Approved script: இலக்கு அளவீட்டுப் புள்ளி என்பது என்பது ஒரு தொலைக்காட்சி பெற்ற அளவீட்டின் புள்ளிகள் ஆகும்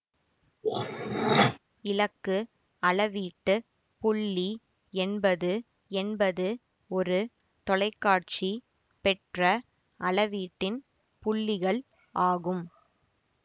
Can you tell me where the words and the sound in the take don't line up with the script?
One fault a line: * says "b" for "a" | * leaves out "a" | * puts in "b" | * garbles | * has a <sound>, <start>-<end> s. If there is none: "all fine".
* has a throat clearing, 0.6-1.6 s